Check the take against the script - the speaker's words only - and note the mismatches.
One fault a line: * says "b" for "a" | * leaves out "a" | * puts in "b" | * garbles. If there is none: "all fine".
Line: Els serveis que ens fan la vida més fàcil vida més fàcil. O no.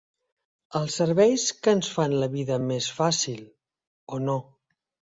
* leaves out "vida més fàcil"